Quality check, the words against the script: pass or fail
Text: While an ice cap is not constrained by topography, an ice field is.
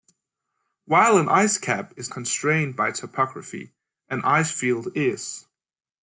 fail